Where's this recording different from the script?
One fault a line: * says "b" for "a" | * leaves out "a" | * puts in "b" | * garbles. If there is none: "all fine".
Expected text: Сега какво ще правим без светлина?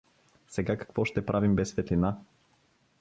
all fine